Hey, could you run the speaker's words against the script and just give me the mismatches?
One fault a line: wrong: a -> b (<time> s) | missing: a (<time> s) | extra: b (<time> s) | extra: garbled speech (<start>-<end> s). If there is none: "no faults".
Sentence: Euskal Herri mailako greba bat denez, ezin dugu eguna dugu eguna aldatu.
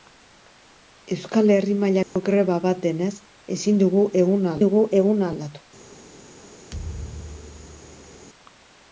no faults